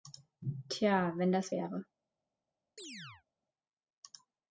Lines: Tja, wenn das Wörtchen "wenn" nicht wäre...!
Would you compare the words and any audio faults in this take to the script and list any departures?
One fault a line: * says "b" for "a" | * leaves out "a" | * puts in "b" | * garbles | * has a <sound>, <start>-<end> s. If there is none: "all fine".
* leaves out "Wörtchen wenn nicht"
* has a chirp, 2.8-3.2 s